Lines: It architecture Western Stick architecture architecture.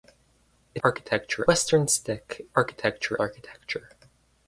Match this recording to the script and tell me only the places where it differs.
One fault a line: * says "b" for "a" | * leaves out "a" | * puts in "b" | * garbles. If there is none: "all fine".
all fine